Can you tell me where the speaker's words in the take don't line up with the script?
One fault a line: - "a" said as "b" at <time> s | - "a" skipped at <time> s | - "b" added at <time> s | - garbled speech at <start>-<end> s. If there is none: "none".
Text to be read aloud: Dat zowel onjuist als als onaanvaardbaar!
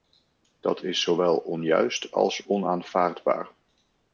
- "is" added at 0.8 s
- "als" skipped at 2.5 s